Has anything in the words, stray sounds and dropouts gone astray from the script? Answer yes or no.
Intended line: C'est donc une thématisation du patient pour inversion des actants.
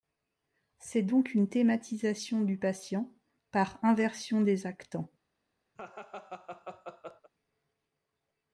yes